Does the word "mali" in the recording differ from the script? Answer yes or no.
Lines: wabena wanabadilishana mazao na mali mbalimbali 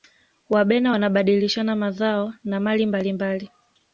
no